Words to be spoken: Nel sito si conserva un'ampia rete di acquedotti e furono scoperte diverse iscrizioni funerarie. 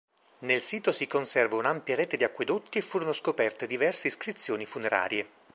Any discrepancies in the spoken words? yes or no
no